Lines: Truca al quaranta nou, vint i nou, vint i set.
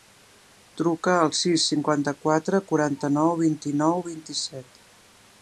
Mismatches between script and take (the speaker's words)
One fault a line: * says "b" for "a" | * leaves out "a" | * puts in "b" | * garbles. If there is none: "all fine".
* puts in "sis cinquanta quatre"